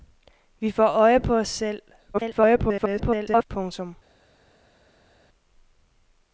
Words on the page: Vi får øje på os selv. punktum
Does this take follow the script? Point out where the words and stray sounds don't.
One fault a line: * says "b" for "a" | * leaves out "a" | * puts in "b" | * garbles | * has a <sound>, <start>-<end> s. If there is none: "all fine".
* garbles